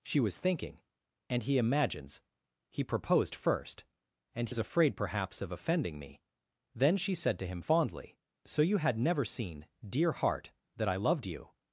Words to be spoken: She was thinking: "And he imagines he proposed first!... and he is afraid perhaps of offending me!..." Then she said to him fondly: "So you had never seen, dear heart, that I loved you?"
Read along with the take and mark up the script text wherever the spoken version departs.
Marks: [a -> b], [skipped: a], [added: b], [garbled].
She was thinking: "And he imagines he proposed first!... and [skipped: he] is afraid perhaps of offending me!..." Then she said to him fondly: "So you had never seen, dear heart, that I loved you?"